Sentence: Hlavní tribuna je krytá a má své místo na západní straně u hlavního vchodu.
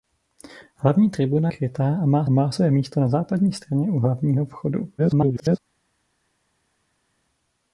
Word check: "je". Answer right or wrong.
wrong